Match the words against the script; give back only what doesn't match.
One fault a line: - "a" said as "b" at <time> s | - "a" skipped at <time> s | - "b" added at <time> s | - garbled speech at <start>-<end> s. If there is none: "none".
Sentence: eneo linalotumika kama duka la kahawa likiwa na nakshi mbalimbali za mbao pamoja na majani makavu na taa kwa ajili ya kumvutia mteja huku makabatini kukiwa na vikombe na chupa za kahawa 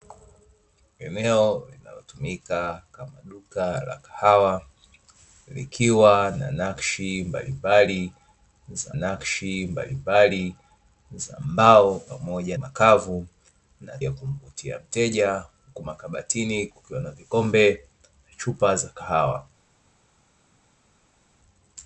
- "nakshi mbalimbali za" added at 8.9 s
- "na majani" skipped at 12.6 s
- "taa kwa ajili" skipped at 14.0 s